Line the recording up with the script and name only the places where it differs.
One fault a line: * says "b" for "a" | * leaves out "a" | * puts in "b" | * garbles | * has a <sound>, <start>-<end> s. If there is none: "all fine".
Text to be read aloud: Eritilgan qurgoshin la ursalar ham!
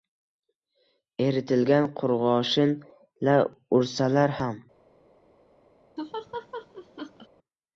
* has a laugh, 6.0-7.3 s